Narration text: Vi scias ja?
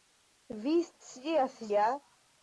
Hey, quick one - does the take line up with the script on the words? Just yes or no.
yes